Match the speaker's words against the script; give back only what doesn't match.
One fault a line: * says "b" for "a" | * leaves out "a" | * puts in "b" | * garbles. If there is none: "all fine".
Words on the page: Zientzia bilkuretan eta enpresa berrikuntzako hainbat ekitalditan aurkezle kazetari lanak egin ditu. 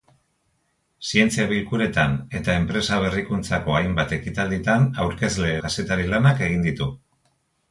all fine